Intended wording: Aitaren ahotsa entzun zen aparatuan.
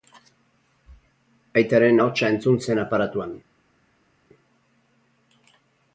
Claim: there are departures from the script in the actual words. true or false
false